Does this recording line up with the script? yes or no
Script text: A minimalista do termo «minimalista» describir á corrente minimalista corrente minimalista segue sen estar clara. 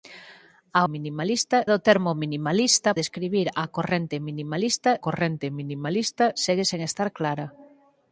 yes